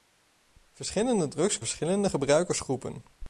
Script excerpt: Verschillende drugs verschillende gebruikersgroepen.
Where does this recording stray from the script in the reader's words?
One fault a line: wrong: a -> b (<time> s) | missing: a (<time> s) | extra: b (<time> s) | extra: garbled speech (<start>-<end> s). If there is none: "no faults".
no faults